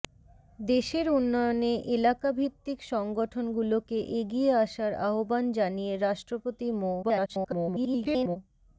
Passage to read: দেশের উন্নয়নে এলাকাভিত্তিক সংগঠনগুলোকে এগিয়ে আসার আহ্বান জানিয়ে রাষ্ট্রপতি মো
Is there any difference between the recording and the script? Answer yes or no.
yes